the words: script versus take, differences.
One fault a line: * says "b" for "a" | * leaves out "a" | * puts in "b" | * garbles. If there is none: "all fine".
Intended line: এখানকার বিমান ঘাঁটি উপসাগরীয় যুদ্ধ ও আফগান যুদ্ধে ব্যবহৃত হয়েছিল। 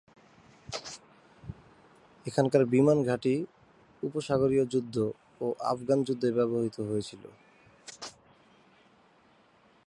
all fine